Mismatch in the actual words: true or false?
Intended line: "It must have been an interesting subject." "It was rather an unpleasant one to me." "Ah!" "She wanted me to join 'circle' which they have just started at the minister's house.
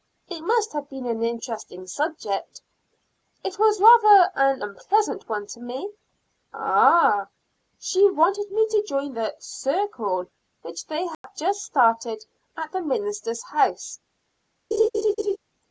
true